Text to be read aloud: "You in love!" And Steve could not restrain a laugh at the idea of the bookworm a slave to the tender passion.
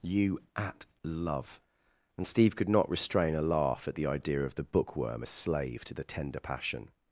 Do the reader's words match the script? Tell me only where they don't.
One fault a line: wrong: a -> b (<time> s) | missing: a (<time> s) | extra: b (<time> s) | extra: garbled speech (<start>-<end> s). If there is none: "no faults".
wrong: in -> at (0.6 s)